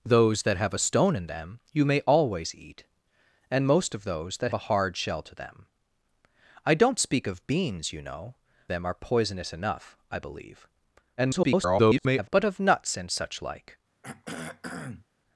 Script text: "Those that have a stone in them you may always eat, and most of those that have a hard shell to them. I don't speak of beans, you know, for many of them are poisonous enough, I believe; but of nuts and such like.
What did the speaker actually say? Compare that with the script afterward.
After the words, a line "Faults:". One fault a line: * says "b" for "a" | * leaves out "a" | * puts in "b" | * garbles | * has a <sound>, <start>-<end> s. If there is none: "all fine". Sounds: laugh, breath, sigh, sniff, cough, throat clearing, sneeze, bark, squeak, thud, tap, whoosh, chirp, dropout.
"Those that have a stone in them you may always eat, and most of those that a hard shell to them. I don't speak of beans, you know, them are poisonous enough, I believe; [garbled] but of nuts and such like.
Faults:
* leaves out "have"
* leaves out "for many of"
* garbles
* has a throat clearing, 14.0-15.1 s